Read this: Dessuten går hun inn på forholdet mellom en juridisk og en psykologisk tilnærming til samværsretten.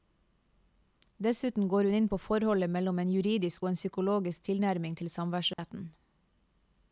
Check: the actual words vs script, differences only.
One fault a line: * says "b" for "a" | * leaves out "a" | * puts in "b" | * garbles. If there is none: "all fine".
all fine